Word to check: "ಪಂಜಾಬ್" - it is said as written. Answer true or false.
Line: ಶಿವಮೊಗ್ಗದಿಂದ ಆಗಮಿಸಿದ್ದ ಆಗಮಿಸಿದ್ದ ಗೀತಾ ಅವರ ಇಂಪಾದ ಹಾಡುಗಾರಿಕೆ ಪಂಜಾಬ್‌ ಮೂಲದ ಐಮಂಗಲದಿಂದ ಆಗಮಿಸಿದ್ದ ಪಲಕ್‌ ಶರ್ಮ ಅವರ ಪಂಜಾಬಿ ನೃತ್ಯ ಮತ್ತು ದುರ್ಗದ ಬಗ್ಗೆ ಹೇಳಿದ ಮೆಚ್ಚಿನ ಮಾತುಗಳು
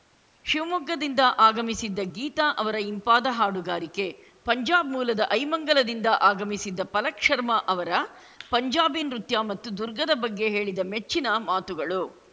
true